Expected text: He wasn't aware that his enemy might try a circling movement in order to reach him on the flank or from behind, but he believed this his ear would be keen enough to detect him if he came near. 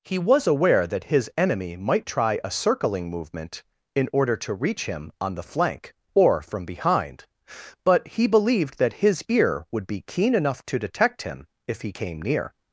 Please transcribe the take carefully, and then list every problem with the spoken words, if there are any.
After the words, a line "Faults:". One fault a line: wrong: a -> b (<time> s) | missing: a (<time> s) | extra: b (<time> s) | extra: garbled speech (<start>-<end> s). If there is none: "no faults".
He was aware that his enemy might try a circling movement in order to reach him on the flank or from behind, but he believed that his ear would be keen enough to detect him if he came near.
Faults:
wrong: wasn't -> was (0.2 s)
wrong: this -> that (8.8 s)